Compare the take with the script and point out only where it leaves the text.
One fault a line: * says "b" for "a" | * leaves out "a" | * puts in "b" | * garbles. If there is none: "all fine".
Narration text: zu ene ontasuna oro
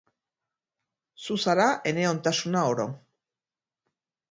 * puts in "zara"